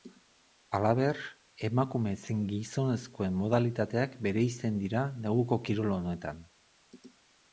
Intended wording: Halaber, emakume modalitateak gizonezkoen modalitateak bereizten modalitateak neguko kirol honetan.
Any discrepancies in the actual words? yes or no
yes